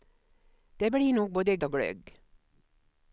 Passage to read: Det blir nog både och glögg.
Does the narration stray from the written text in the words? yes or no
no